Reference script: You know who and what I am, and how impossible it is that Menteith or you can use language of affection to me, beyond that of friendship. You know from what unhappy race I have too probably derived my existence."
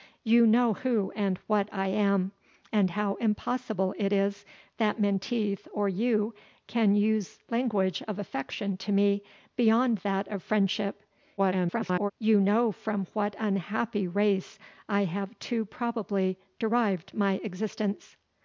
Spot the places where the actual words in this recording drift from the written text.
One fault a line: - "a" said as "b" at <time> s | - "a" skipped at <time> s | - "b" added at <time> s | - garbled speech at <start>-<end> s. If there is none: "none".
- garbled speech at 11.4-12.1 s